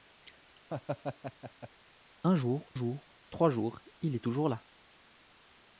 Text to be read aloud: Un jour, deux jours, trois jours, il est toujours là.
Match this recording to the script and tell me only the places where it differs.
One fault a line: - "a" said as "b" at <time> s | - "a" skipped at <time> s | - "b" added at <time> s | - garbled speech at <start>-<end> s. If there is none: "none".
- "deux" skipped at 2.7 s